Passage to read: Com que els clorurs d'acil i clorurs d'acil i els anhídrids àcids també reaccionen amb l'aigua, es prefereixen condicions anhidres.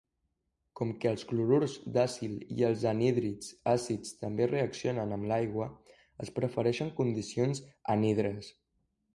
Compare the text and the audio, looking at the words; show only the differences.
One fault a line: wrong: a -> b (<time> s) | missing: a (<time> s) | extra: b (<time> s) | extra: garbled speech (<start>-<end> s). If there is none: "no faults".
missing: clorurs d'acil i (2.6 s)